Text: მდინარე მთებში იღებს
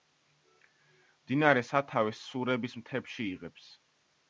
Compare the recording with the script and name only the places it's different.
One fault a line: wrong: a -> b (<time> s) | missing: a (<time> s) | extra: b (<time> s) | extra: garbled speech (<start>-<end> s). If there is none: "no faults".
extra: სათავეს სურების (1.7 s)